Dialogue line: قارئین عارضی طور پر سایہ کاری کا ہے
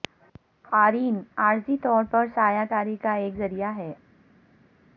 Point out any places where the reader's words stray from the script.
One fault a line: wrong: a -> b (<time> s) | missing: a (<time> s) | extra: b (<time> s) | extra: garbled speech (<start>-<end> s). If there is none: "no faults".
extra: ایک ذریعہ (3.1 s)